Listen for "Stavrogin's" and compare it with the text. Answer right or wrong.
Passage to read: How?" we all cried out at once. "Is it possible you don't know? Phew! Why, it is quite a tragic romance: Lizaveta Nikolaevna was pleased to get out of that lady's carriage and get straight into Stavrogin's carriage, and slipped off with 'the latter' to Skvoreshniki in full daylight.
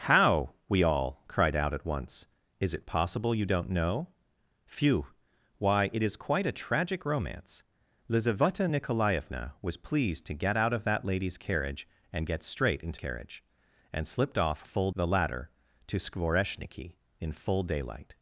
wrong